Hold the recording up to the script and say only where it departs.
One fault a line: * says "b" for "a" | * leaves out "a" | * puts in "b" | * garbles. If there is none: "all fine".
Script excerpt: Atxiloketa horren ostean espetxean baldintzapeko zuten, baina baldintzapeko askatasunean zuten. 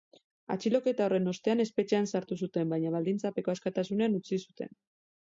* says "sartu" for "baldintzapeko"
* puts in "utzi"